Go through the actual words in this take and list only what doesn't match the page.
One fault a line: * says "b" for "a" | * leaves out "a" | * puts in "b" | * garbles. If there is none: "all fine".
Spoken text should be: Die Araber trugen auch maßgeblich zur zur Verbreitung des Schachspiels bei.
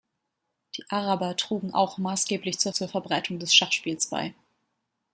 all fine